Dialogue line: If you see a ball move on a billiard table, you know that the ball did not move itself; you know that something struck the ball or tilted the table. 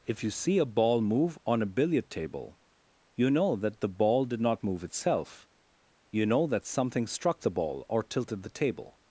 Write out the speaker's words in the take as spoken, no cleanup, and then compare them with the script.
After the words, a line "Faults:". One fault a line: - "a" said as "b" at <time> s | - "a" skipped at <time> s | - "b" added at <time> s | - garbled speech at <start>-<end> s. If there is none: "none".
If you see a ball move on a billiard table, you know that the ball did not move itself; you know that something struck the ball or tilted the table.
Faults:
none